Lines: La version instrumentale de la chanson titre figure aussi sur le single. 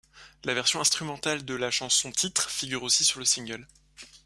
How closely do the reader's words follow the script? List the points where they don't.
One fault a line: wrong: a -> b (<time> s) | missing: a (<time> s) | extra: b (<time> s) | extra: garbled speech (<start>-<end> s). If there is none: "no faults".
no faults